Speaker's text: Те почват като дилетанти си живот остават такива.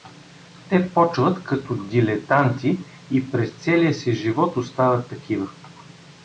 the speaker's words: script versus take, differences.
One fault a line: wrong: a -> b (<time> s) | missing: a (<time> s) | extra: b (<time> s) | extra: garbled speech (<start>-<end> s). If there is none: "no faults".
extra: и през целия (3.1 s)